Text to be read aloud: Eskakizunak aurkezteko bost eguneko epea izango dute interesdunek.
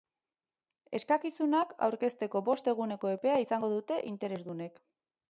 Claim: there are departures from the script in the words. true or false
false